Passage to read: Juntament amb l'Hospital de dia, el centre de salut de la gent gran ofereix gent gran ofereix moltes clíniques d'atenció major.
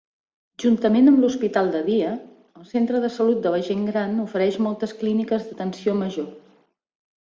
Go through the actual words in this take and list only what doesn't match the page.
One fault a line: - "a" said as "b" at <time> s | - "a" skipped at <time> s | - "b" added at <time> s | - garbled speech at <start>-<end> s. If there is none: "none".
- "gent gran ofereix" skipped at 4.6 s